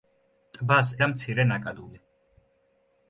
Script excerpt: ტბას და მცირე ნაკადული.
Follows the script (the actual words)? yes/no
yes